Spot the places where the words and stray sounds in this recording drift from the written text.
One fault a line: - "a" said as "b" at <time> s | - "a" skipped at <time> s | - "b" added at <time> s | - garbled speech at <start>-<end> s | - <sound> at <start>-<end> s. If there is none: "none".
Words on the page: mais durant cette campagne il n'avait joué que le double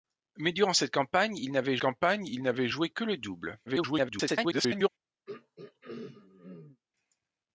- "campagne il n'avait" added at 1.8 s
- garbled speech at 3.7-4.9 s
- throat clearing at 5.3-6.8 s